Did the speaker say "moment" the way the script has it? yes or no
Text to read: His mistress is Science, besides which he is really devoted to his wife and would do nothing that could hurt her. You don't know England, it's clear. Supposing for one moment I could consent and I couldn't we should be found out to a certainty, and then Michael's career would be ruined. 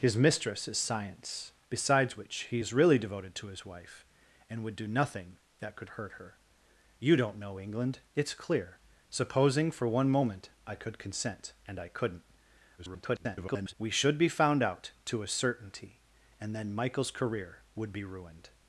yes